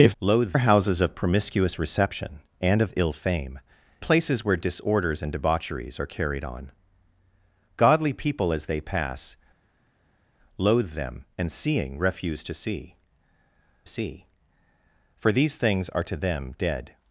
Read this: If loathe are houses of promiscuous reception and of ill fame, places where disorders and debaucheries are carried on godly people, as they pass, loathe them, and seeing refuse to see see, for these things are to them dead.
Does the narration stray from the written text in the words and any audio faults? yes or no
no